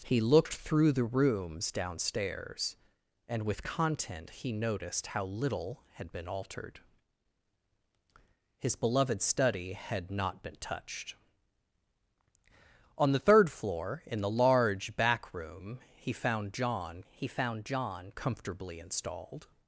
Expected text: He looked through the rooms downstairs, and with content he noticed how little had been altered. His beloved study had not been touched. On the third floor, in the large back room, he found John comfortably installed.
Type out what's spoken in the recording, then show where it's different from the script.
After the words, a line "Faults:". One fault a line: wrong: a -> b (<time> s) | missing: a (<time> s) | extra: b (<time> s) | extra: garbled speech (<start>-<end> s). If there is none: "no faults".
He looked through the rooms downstairs, and with content he noticed how little had been altered. His beloved study had not been touched. On the third floor, in the large back room, he found John he found John comfortably installed.
Faults:
extra: he found John (17.1 s)